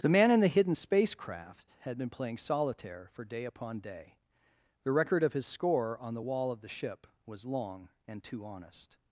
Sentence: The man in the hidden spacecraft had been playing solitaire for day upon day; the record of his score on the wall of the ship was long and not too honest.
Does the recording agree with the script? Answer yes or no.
no